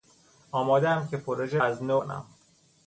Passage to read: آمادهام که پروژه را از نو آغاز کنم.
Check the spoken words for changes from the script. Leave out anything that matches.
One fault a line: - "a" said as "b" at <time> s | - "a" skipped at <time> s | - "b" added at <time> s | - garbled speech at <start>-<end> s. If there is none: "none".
- "را" skipped at 1.6 s
- "آغاز" skipped at 2.0 s